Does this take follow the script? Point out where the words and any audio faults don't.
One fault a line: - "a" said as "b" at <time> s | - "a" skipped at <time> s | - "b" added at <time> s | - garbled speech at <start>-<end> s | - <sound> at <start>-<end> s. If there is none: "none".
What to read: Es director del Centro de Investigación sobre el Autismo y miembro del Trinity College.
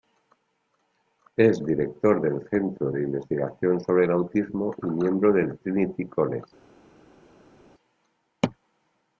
none